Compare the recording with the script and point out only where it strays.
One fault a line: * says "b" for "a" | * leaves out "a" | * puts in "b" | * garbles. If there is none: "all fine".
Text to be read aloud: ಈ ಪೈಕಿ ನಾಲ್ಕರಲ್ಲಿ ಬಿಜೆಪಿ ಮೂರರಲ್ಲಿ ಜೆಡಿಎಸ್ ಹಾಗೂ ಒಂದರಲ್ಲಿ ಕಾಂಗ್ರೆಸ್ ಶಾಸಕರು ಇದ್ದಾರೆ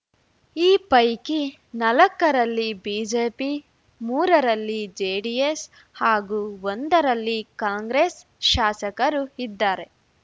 all fine